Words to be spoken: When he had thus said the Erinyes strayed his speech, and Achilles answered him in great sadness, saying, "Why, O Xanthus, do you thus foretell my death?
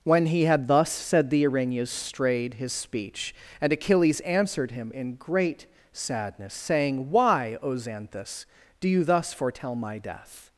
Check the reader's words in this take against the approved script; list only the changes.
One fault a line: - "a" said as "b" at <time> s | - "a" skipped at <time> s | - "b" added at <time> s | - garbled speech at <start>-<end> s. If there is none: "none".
none